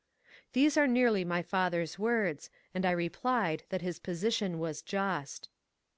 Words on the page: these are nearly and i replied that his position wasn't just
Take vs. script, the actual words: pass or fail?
fail